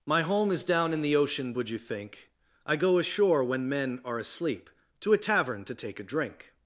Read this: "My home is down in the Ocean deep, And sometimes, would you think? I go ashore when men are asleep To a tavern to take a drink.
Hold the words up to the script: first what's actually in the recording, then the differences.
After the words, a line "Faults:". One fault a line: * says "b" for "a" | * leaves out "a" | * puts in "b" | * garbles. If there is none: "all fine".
"My home is down in the Ocean would you think? I go ashore when men are asleep To a tavern to take a drink.
Faults:
* leaves out "deep And sometimes"